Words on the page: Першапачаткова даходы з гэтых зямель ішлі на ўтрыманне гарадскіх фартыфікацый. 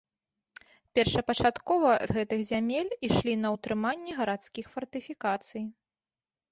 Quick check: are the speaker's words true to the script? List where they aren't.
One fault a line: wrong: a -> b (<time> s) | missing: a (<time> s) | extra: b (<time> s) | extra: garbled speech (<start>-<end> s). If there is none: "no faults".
missing: даходы (1.9 s)